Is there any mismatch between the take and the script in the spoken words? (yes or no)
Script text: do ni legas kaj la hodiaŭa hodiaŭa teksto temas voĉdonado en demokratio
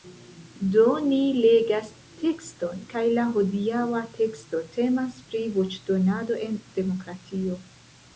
yes